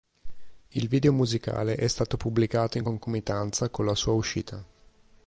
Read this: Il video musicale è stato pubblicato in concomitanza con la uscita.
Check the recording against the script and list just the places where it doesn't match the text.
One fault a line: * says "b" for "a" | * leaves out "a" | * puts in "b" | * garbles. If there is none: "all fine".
* puts in "sua"